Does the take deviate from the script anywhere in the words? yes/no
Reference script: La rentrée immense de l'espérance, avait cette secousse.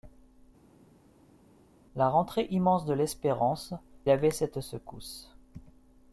no